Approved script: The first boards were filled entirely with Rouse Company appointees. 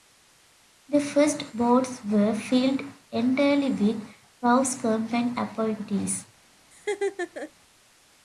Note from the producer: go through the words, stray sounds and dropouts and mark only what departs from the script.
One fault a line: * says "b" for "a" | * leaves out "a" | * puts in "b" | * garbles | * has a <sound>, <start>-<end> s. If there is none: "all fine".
* has a laugh, 6.7-7.5 s